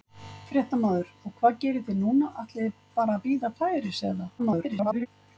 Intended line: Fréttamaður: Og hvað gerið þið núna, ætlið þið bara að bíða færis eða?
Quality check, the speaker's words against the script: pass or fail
fail